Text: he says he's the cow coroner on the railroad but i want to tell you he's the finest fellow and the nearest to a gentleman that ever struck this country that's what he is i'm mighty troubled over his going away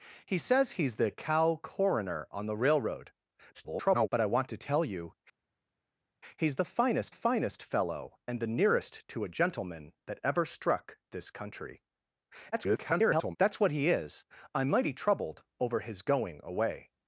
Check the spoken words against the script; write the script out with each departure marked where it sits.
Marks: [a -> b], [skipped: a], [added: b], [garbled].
he says he's the cow coroner on the railroad [garbled] but i want to tell you he's the finest [added: finest] fellow and the nearest to a gentleman that ever struck this country [garbled] that's what he is i'm mighty troubled over his going away